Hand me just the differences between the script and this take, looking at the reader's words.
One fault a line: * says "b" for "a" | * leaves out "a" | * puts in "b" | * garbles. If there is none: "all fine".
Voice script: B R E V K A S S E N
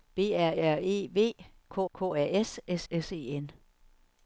* puts in "R"
* puts in "K"
* puts in "S"